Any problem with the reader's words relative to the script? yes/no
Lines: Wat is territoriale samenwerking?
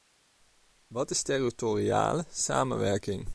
no